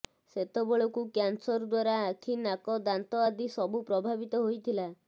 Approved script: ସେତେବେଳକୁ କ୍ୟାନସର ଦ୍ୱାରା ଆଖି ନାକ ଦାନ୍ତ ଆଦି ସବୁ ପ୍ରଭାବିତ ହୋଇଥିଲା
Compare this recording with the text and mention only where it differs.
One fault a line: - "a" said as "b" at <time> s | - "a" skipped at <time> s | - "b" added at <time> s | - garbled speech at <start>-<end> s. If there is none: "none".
none